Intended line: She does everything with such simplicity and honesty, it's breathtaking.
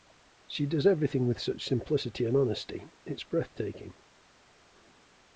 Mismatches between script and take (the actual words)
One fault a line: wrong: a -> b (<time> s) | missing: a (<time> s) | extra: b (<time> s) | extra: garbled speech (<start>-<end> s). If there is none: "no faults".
no faults